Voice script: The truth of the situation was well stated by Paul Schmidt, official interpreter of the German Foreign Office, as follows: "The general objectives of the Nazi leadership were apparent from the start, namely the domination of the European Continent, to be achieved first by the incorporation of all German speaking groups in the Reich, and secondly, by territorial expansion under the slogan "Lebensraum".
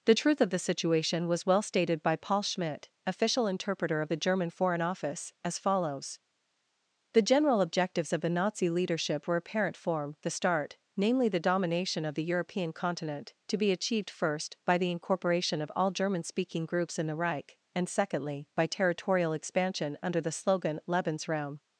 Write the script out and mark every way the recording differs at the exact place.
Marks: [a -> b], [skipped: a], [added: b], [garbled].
The truth of the situation was well stated by Paul Schmidt, official interpreter of the German Foreign Office, as follows: "The general objectives of the Nazi leadership were apparent [from -> form] the start, namely the domination of the European Continent, to be achieved first by the incorporation of all German speaking groups in the Reich, and secondly, by territorial expansion under the slogan "Lebensraum".